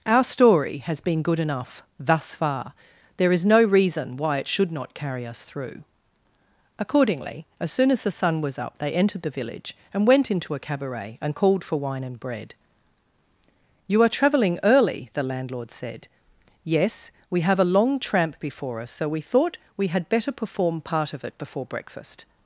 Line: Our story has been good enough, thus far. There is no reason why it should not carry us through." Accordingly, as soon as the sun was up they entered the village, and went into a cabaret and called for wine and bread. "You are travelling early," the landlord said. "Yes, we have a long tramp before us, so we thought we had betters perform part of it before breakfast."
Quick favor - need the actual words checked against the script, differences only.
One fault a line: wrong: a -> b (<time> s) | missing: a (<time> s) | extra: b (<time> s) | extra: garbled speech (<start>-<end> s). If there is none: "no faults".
wrong: betters -> better (20.1 s)